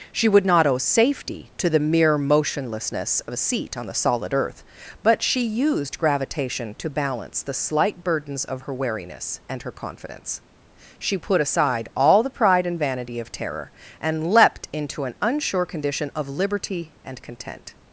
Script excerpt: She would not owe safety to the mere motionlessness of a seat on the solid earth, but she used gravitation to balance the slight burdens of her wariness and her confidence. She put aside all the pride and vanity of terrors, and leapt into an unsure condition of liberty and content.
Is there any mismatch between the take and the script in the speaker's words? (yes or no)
yes